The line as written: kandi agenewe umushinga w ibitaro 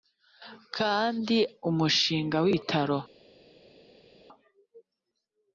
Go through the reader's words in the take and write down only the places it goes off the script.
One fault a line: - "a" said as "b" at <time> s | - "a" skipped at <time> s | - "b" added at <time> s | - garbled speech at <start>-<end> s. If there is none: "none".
- "agenewe" skipped at 1.4 s